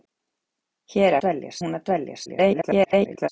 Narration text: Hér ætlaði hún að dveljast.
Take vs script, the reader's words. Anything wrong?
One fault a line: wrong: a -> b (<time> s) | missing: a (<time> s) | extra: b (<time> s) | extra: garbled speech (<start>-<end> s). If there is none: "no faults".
wrong: ætlaði -> dveljast (1.2 s)
extra: garbled speech (2.3-3.3 s)